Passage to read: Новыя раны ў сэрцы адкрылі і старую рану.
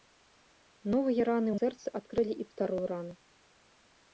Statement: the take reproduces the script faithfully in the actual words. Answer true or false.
true